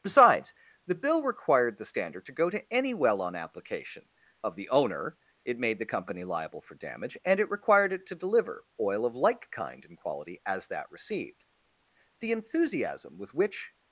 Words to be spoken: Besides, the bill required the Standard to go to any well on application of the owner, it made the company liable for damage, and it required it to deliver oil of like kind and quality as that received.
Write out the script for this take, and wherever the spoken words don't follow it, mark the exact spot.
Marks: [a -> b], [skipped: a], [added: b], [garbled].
Besides, the bill required the Standard to go to any well on application of the owner, it made the company liable for damage, and it required it to deliver oil of like kind and quality as that received. [added: The enthusiasm with which]